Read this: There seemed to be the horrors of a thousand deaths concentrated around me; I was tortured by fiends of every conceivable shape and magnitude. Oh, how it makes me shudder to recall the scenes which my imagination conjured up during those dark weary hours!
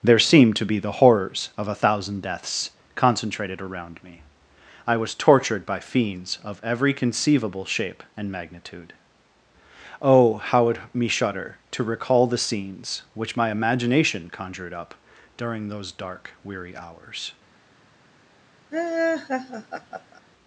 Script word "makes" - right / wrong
wrong